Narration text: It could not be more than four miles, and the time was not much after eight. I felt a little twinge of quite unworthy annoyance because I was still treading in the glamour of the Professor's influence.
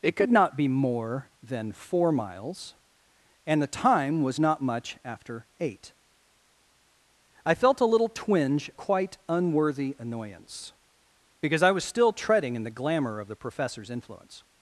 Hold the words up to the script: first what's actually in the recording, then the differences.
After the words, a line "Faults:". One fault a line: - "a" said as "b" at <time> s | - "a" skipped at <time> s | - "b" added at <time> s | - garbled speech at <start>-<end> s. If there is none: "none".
It could not be more than four miles, and the time was not much after eight. I felt a little twinge quite unworthy annoyance because I was still treading in the glamour of the Professor's influence.
Faults:
- "of" skipped at 8.7 s